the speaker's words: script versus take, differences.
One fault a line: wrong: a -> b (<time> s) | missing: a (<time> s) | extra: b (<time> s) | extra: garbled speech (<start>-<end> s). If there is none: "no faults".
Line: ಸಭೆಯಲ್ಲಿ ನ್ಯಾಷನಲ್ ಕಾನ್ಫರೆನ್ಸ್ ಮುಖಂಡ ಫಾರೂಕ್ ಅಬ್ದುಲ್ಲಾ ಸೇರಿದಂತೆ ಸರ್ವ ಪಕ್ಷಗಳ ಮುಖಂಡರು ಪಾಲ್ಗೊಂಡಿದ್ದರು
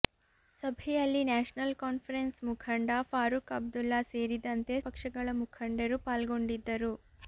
missing: ಸರ್ವ (4.8 s)